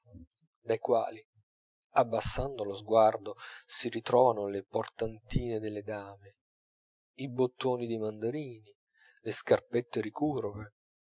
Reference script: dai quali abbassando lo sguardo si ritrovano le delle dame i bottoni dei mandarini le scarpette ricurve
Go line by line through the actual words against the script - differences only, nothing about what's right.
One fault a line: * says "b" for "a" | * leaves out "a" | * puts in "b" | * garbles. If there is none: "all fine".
* puts in "portantine"